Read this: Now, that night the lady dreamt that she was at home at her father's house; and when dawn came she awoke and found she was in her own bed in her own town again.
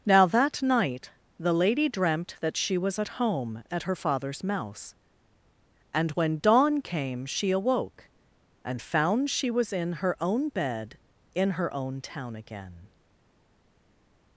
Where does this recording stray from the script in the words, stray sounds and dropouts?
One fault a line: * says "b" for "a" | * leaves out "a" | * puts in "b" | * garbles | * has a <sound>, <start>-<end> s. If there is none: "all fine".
* says "mouse" for "house"